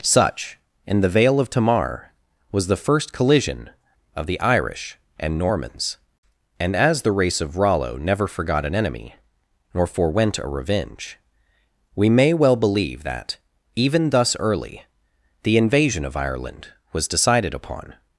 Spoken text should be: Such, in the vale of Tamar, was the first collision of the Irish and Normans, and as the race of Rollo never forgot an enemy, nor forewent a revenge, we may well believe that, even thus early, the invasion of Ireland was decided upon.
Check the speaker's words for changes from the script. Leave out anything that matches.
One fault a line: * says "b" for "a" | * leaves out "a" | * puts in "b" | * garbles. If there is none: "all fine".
all fine